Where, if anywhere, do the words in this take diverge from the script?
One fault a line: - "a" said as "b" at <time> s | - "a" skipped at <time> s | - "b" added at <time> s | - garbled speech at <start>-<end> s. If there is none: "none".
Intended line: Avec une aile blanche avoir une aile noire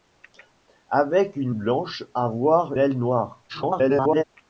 - "aile" skipped at 1.6 s
- "une" skipped at 2.7 s
- garbled speech at 3.5-4.2 s